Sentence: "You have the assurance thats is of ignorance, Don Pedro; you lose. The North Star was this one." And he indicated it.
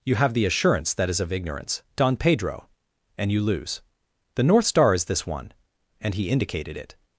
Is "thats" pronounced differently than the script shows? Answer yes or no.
yes